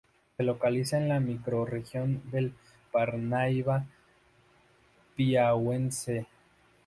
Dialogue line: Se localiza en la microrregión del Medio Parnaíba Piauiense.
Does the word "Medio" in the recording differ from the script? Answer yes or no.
yes